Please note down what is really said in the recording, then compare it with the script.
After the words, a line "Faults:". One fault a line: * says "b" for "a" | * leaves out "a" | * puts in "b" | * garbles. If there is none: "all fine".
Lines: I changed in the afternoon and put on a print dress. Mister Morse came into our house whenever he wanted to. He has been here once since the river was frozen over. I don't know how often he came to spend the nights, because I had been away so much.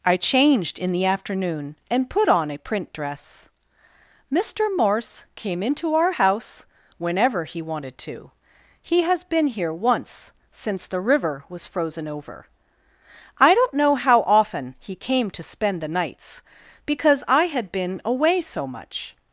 I changed in the afternoon and put on a print dress. Mister Morse came into our house whenever he wanted to. He has been here once since the river was frozen over. I don't know how often he came to spend the nights, because I had been away so much.
Faults:
all fine